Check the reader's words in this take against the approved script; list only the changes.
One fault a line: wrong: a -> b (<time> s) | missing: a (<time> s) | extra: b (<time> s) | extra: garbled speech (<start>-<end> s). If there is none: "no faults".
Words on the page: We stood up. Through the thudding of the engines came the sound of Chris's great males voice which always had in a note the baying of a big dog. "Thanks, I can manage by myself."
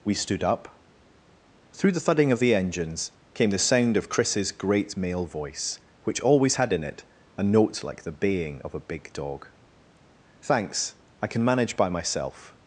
wrong: males -> male (5.0 s)
extra: it (6.8 s)
extra: like (7.8 s)